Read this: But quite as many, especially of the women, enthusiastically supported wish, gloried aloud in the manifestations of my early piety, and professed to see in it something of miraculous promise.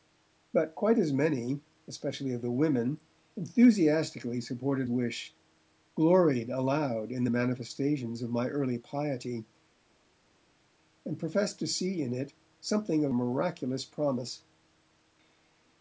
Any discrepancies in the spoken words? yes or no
no